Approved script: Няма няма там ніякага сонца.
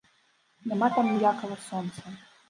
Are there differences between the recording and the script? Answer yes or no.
yes